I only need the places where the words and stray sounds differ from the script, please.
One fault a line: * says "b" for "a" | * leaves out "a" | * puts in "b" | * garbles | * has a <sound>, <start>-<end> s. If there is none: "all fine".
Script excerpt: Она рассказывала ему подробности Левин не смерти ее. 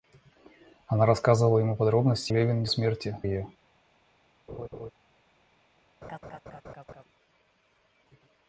* has a laugh, 4.5-4.9 s
* has a laugh, 6.0-7.0 s